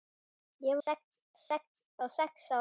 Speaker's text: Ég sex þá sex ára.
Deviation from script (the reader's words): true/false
false